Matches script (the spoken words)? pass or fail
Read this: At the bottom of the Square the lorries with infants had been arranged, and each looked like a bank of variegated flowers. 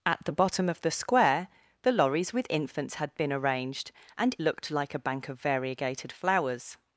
fail